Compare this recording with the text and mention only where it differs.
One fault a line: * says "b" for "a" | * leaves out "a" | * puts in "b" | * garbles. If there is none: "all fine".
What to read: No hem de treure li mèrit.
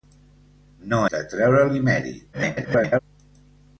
* leaves out "hem"
* garbles